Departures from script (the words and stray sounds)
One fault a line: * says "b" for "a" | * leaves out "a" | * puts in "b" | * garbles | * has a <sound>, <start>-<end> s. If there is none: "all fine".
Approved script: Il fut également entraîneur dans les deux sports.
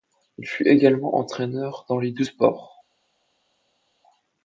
all fine